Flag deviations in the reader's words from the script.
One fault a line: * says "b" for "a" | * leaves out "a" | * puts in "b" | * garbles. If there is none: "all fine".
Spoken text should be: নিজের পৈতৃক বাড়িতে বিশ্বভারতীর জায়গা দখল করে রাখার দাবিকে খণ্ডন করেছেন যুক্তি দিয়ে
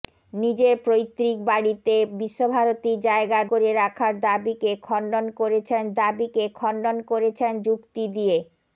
* leaves out "দখল"
* puts in "দাবিকে খণ্ডন করেছেন"